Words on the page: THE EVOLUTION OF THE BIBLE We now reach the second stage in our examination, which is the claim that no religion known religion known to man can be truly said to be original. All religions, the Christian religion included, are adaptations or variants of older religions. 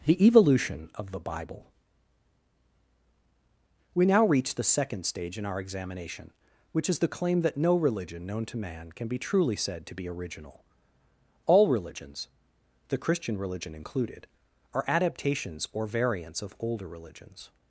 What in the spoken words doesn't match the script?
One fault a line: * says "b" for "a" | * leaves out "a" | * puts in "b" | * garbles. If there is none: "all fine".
* leaves out "religion known"